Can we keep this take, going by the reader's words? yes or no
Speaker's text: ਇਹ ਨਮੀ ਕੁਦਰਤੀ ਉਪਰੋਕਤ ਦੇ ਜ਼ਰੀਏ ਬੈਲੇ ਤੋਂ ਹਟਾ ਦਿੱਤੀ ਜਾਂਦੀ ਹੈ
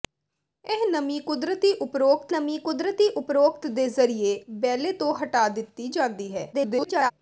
no